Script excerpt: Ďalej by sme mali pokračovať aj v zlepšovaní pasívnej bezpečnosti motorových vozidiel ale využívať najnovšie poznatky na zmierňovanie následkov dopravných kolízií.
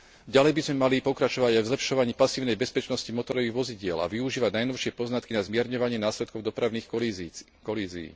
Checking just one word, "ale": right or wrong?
wrong